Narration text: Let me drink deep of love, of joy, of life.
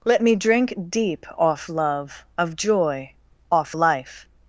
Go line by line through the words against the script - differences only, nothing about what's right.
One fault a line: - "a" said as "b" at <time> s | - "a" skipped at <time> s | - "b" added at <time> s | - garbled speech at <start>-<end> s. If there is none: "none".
- "of" said as "off" at 1.4 s
- "of" said as "off" at 3.5 s